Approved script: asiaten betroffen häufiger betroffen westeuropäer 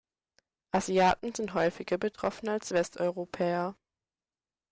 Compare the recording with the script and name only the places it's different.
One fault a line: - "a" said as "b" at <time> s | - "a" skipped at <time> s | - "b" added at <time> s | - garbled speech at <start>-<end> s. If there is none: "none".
- "betroffen" said as "sind" at 1.4 s
- "als" added at 2.5 s